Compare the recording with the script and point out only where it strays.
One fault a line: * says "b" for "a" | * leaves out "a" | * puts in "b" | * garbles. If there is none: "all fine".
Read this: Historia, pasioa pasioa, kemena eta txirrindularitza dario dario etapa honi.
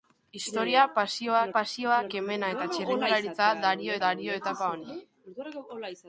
all fine